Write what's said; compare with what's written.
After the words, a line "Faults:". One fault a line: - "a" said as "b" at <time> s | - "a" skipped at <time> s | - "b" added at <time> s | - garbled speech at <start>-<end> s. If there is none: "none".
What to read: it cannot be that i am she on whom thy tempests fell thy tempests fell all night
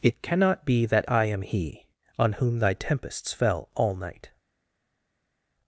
it cannot be that i am he on whom thy tempests fell all night
Faults:
- "she" said as "he" at 1.4 s
- "thy tempests fell" skipped at 3.7 s